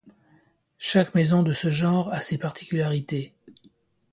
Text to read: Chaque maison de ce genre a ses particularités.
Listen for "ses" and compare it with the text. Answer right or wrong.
right